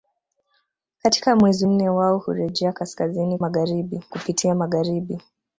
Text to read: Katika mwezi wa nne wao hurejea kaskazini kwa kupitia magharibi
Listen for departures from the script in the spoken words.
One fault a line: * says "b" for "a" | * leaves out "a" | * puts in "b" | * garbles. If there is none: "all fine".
* leaves out "wa"
* says "magharibi" for "kwa"